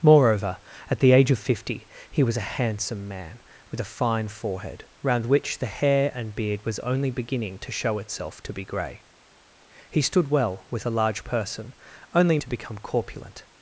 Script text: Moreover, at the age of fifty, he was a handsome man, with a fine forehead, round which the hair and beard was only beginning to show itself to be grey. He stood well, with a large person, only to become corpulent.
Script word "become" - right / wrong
right